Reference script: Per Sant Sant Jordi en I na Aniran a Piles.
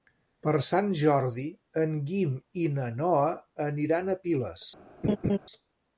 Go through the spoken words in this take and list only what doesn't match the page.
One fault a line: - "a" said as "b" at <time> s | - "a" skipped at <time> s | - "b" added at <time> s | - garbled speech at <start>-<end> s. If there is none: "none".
- "Sant" skipped at 0.9 s
- "Guim" added at 2.1 s
- "Noa" added at 3.0 s